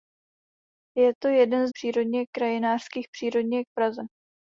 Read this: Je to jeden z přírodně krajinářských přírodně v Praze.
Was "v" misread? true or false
false